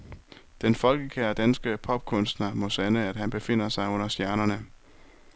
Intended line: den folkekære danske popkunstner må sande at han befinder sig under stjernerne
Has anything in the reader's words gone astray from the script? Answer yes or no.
no